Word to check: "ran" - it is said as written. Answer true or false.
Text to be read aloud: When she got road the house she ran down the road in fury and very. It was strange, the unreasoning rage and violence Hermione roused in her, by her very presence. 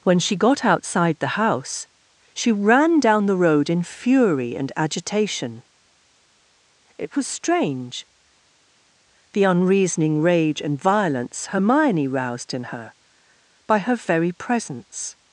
true